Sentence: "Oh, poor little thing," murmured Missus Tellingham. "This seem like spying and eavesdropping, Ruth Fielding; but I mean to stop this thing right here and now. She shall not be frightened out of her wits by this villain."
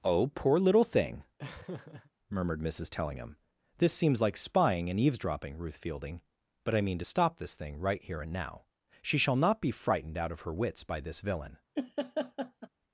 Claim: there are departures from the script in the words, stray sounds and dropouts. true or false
true